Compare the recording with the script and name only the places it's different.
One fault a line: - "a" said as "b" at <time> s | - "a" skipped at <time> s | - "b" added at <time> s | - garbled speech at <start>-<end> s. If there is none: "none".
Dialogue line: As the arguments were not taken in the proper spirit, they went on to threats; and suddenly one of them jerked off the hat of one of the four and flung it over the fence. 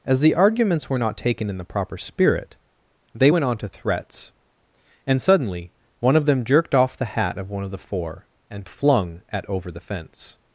- "it" said as "at" at 9.3 s